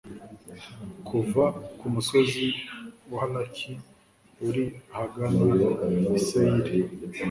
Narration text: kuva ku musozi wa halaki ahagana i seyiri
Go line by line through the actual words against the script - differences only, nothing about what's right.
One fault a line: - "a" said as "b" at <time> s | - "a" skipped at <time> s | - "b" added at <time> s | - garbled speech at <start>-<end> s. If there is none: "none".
- "uri" added at 4.5 s